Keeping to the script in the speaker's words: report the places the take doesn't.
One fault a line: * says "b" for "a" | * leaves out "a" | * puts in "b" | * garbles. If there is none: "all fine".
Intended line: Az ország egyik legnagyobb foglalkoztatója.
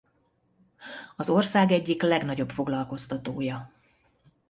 all fine